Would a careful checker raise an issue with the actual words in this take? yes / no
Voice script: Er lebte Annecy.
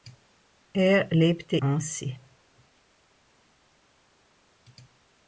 no